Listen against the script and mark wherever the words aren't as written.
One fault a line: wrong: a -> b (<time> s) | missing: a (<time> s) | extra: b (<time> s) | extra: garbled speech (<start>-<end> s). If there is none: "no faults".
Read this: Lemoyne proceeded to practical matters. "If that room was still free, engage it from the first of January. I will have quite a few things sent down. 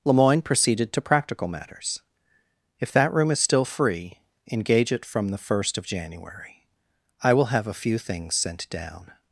wrong: was -> is (3.3 s)
missing: quite (7.7 s)